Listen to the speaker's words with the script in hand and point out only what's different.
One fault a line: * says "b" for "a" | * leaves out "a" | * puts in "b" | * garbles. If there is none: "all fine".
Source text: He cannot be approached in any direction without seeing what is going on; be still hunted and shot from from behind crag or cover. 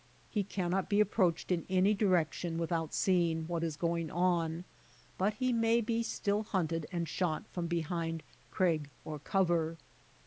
* puts in "but he may"
* leaves out "from"